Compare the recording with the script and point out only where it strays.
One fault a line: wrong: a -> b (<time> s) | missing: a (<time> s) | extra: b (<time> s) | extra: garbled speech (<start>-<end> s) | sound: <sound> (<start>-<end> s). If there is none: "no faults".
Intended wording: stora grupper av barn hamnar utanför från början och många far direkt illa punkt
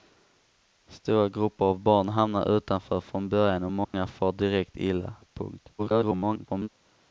sound: dropout (3.8-3.9 s)
extra: garbled speech (5.8-6.7 s)